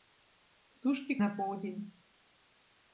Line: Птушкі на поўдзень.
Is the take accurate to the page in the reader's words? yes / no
yes